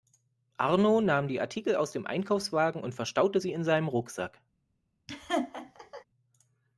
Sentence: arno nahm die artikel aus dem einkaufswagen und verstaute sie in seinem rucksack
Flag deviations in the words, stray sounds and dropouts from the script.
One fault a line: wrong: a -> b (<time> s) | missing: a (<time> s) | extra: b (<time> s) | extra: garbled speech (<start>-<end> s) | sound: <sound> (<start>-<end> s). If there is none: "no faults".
sound: laugh (5.1-6.0 s)